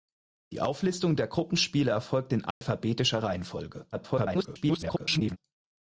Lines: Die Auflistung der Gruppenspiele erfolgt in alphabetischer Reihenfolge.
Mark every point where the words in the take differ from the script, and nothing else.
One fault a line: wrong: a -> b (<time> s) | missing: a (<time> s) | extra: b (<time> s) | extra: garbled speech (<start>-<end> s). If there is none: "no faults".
extra: garbled speech (3.9-5.4 s)